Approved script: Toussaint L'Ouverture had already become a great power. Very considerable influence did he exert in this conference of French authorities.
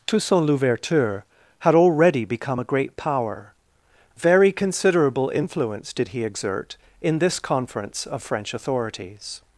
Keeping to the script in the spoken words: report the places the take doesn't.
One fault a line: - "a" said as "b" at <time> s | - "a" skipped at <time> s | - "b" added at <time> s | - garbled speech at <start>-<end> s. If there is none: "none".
none